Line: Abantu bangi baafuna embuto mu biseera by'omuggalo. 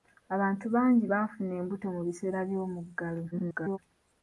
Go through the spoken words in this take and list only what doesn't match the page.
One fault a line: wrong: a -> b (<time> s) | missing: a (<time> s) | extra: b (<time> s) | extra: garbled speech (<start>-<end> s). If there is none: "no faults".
extra: garbled speech (3.3-3.8 s)